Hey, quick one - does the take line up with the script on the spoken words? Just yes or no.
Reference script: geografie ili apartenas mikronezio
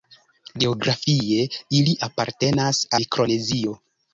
yes